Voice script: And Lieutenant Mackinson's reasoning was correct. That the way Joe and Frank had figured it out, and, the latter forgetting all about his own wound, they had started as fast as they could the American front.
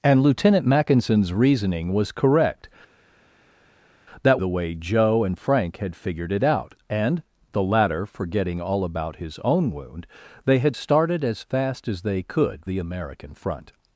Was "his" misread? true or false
false